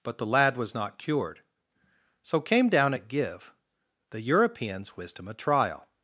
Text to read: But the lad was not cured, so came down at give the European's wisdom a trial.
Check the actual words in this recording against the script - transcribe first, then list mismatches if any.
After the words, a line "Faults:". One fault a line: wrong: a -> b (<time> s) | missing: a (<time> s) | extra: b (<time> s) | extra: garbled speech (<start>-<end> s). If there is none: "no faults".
But the lad was not cured, so came down at give the European's wisdom a trial.
Faults:
no faults